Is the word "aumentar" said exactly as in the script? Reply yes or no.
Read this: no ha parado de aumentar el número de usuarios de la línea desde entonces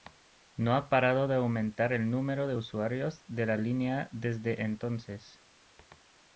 yes